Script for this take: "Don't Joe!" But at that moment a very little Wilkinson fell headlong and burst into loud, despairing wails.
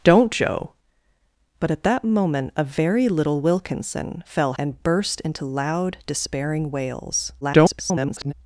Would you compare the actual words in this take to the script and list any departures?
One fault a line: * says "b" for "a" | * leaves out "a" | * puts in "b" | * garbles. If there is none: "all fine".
* leaves out "headlong"
* garbles